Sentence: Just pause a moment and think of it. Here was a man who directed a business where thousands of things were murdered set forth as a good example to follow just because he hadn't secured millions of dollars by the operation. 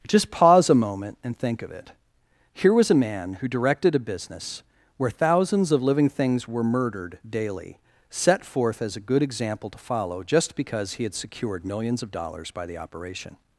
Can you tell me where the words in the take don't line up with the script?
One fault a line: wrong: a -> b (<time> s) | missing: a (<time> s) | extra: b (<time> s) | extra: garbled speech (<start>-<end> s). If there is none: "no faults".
extra: living (5.8 s)
extra: daily (7.3 s)
wrong: hadn't -> had (11.0 s)